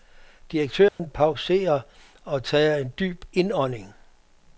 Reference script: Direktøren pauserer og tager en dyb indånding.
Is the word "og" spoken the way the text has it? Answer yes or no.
yes